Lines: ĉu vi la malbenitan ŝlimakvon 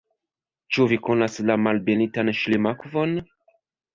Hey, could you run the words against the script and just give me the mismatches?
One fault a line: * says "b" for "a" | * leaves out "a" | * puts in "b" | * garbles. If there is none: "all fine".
* puts in "konas"